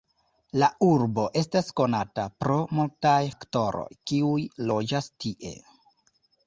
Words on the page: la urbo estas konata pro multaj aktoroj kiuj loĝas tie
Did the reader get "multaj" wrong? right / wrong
right